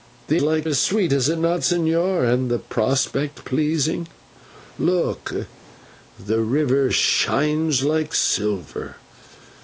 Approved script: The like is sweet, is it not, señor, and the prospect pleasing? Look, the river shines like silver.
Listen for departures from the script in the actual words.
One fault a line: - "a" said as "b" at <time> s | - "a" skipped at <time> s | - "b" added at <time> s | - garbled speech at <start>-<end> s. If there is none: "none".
none